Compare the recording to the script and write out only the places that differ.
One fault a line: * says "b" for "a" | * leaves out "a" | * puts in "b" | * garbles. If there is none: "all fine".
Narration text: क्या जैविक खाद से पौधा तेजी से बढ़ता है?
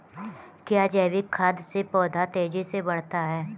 all fine